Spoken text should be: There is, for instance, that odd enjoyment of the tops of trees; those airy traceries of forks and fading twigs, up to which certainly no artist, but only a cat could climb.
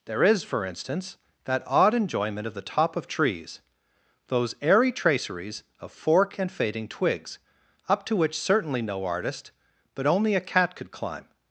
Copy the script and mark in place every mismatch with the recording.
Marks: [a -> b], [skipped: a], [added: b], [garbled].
There is, for instance, that odd enjoyment of the [tops -> top] of trees; those airy traceries of [forks -> fork] and fading twigs, up to which certainly no artist, but only a cat could climb.